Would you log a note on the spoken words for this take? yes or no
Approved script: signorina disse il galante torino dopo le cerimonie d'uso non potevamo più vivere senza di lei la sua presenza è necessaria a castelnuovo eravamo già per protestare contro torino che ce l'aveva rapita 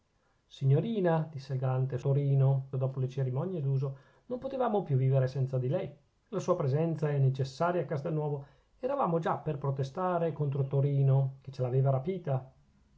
no